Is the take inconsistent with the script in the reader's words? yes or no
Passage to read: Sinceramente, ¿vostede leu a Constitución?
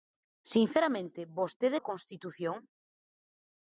yes